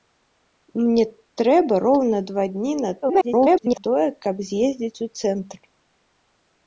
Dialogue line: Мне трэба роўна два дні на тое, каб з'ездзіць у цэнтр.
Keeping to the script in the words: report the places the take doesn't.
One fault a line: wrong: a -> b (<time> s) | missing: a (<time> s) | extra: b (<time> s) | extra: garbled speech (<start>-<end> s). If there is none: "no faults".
extra: garbled speech (3.0-3.8 s)